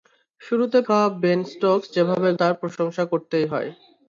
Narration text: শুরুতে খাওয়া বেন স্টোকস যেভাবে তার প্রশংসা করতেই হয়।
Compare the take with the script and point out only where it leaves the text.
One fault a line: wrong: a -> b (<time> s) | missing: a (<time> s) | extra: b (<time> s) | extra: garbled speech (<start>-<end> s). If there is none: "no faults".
no faults